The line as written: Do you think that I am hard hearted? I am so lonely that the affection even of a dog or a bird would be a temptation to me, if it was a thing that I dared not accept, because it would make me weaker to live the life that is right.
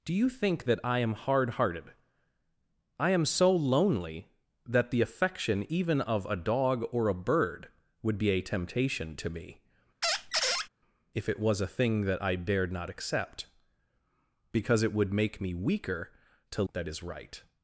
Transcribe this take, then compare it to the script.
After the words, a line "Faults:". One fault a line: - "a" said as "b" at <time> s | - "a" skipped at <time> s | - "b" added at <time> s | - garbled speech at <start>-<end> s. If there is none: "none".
Do you think that I am hard hearted? I am so lonely that the affection even of a dog or a bird would be a temptation to me, if it was a thing that I dared not accept, because it would make me weaker to that is right.
Faults:
- "live the life" skipped at 16.6 s